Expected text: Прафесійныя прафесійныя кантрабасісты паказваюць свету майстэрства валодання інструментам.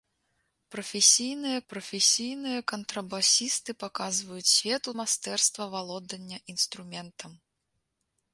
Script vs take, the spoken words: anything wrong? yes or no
no